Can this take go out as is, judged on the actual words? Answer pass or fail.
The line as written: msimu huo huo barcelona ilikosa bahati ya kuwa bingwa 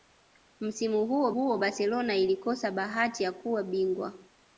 pass